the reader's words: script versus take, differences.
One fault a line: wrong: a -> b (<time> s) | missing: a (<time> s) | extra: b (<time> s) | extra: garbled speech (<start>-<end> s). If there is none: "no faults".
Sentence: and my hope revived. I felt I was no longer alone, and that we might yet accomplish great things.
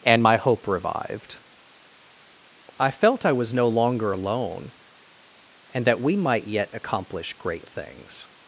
no faults